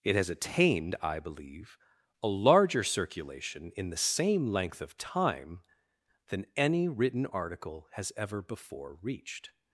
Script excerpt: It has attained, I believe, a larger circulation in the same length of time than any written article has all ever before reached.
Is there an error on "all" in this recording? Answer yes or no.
yes